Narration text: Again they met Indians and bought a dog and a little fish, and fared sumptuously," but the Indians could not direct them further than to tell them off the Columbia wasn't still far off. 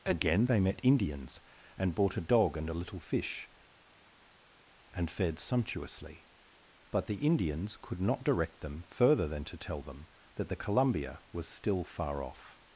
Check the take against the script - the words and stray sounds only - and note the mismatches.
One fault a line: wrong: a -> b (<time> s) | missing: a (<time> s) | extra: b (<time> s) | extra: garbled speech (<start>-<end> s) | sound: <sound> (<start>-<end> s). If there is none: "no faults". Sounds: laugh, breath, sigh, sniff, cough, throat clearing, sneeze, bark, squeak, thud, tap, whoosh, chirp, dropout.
wrong: off -> that (10.3 s)
wrong: wasn't -> was (11.3 s)